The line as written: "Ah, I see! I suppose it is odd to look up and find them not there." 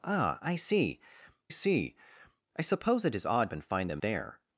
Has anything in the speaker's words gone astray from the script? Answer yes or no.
yes